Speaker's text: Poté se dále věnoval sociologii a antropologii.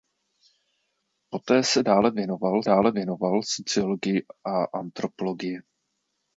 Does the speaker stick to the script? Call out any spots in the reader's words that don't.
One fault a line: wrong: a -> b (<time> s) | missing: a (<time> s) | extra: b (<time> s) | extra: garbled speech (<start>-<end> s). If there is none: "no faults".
extra: dále věnoval (2.6 s)